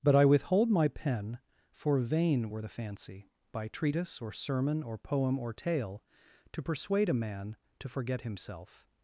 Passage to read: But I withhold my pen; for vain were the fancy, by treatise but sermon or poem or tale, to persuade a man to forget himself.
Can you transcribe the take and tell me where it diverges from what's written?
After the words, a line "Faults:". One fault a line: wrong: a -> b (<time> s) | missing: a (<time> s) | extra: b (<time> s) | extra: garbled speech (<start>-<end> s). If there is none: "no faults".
But I withhold my pen; for vain were the fancy, by treatise or sermon or poem or tale, to persuade a man to forget himself.
Faults:
wrong: but -> or (4.2 s)